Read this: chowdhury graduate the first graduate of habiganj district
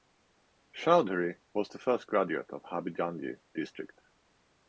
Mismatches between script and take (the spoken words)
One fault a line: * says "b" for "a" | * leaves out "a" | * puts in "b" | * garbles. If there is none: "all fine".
* says "was" for "graduate"